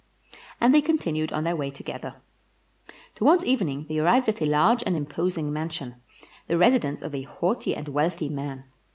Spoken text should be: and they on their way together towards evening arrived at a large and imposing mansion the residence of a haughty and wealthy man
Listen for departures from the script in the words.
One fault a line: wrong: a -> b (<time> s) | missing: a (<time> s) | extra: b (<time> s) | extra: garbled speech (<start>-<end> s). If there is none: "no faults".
extra: continued (0.8 s)
extra: they (3.9 s)